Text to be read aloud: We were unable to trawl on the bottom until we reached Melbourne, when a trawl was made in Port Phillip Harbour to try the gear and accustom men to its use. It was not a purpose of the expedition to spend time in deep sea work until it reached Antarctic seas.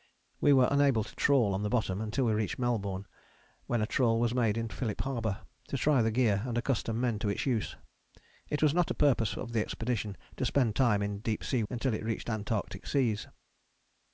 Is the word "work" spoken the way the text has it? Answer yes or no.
no